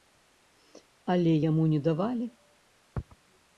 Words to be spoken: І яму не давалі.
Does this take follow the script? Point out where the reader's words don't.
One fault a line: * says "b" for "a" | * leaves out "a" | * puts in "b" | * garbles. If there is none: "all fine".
* says "Але" for "І"